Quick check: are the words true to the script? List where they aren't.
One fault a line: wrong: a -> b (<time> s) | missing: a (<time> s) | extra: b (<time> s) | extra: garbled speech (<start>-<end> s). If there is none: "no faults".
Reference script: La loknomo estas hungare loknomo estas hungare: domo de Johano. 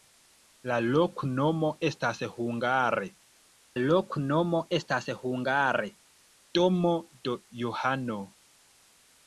no faults